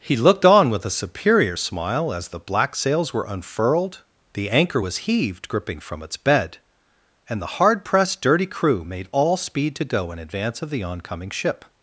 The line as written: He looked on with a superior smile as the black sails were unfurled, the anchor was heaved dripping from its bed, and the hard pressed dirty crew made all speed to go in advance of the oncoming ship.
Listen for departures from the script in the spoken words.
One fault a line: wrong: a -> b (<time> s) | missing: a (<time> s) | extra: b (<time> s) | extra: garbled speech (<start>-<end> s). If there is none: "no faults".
no faults